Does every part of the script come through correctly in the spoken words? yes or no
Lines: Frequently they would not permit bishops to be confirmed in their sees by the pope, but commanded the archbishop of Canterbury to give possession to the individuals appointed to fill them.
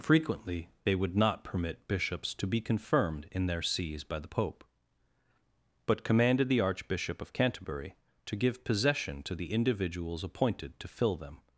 yes